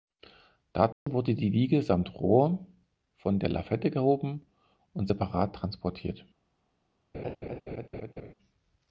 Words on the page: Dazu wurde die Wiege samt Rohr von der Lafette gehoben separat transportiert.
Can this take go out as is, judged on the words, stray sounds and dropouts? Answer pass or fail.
fail